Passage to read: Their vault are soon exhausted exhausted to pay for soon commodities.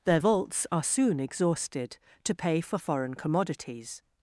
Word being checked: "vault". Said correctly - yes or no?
no